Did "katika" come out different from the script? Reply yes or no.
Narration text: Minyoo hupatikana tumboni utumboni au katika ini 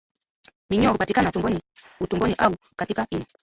no